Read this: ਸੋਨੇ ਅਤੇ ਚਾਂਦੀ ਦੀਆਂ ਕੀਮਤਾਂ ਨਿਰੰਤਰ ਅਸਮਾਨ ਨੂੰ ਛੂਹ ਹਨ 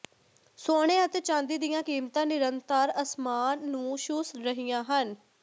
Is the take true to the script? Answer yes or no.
no